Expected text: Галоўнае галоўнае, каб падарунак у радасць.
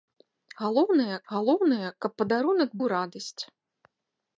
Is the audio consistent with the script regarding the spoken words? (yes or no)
yes